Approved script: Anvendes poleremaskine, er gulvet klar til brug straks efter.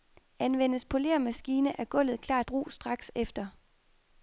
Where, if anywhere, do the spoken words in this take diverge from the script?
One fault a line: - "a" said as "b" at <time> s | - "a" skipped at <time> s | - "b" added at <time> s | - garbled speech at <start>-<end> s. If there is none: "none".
- "til" skipped at 2.4 s